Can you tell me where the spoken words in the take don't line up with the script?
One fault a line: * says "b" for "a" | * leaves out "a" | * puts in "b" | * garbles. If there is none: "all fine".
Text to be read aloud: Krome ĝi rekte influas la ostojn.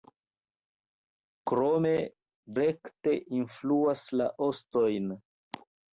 * leaves out "ĝi"